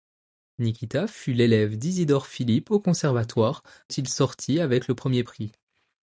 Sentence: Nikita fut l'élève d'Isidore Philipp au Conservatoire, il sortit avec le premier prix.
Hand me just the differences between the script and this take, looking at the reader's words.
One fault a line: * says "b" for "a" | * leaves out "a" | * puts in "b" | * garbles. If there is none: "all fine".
all fine